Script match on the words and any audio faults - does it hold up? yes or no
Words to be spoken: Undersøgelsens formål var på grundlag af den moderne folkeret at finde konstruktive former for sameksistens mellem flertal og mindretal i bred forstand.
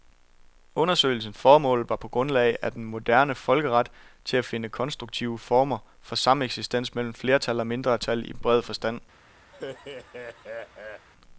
no